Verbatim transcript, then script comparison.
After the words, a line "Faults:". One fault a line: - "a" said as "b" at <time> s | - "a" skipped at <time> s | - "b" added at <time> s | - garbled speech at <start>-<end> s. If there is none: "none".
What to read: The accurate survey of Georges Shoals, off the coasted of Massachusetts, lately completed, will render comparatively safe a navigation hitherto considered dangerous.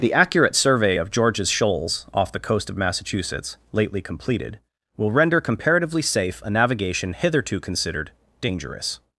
The accurate survey of Georges Shoals, off the coast of Massachusetts, lately completed, will render comparatively safe a navigation hitherto considered dangerous.
Faults:
- "coasted" said as "coast" at 2.4 s